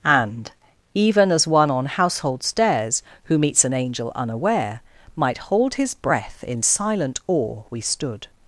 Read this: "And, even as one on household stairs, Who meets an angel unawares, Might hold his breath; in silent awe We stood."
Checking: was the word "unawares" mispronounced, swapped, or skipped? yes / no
yes